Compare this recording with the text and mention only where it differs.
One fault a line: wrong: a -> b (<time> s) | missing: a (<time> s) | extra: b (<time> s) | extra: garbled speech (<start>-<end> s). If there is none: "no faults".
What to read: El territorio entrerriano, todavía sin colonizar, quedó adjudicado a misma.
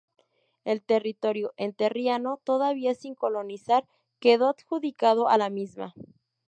extra: la (5.3 s)